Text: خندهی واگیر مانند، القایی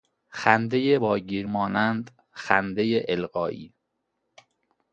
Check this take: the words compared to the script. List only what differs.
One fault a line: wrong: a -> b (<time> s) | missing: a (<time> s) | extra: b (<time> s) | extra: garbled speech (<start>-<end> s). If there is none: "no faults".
extra: خندهی (2.3 s)